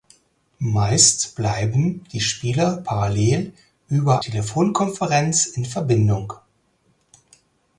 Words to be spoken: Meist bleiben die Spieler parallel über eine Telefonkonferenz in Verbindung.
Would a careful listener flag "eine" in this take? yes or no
yes